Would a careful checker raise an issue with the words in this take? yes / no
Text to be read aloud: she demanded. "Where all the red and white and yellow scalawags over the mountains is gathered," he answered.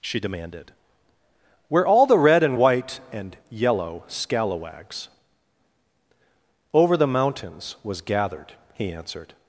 yes